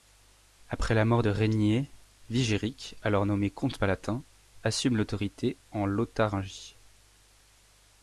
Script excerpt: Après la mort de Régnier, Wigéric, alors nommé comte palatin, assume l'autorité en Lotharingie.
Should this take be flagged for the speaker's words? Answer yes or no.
no